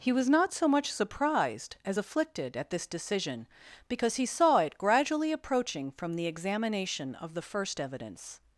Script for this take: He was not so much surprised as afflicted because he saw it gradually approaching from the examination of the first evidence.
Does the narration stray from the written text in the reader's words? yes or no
yes